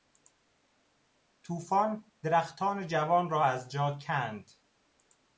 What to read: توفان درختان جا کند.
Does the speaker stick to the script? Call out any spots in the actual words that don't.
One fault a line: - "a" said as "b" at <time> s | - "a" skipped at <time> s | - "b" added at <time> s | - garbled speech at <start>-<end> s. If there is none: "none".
- "جوان را از" added at 2.9 s